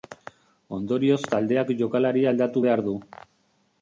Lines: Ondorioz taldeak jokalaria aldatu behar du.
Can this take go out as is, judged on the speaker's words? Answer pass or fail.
pass